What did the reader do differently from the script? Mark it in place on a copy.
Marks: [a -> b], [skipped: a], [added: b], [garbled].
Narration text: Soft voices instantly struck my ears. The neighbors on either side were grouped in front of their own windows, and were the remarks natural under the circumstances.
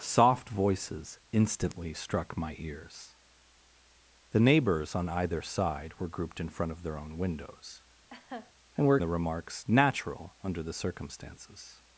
Soft voices instantly struck my ears. The neighbors on either side were grouped in front of their own windows, and were the remarks natural under the circumstances.